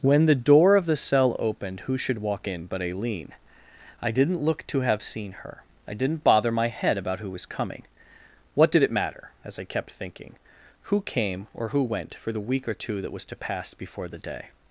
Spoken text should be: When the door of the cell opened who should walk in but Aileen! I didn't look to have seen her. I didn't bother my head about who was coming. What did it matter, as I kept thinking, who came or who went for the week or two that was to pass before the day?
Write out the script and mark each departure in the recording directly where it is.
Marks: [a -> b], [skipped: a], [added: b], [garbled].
When the door of the cell opened who should walk in but Aileen! I didn't look to have seen her. I didn't bother my head about who was coming. What did it matter, as I kept thinking, who came or who went for the week or two that was to pass before the day?